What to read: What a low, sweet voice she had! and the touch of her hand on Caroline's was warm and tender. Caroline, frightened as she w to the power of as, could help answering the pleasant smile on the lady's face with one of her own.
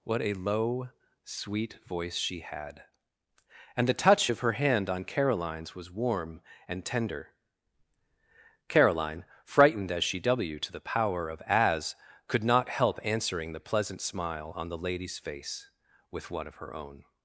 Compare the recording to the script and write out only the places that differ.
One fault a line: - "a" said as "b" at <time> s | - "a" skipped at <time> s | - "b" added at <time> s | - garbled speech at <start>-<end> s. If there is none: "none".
- "not" added at 12.4 s